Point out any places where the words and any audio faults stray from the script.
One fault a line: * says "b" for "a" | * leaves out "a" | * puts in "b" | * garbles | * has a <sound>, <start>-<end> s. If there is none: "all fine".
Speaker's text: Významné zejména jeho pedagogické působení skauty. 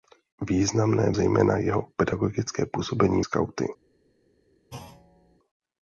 * has a thud, 4.7-5.4 s